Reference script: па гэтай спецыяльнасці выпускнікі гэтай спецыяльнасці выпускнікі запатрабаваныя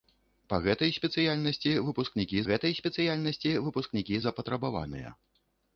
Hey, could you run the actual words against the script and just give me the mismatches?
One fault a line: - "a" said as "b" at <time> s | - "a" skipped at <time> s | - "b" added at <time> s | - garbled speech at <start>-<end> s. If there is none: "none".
none